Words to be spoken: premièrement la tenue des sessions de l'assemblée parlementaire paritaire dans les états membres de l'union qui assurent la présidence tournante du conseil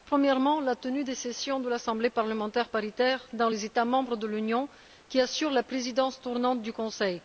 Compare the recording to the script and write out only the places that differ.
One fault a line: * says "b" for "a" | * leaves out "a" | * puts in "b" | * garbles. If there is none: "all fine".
all fine